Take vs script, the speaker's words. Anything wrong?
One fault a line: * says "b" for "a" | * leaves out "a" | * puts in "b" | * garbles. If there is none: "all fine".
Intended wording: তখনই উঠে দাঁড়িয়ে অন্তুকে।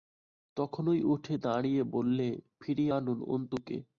* puts in "বললে ফিরিয়ে আনুন"